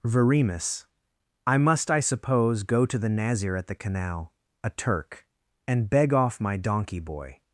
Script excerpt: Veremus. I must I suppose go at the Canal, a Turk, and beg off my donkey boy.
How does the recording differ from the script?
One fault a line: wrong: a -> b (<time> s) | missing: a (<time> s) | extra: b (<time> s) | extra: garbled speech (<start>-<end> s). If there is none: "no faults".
extra: to the Nazir (2.9 s)